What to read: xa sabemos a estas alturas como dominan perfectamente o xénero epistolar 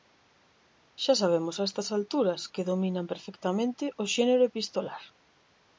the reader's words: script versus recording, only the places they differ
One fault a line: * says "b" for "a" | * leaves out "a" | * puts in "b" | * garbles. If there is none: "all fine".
* says "que" for "como"